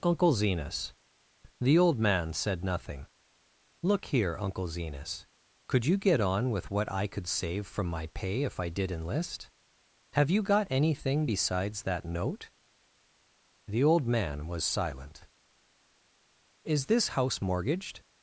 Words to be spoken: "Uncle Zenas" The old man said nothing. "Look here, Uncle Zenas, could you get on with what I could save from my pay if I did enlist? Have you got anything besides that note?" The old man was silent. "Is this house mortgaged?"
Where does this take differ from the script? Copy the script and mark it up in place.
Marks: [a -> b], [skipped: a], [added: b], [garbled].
"Uncle Zenas" The old man said nothing. "Look here, Uncle Zenas, could you get on with what I could save from my pay if I did enlist? Have you got anything besides that note?" The old man was silent. "Is this house mortgaged?"